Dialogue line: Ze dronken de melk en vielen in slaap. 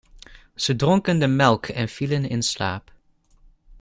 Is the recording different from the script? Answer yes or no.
no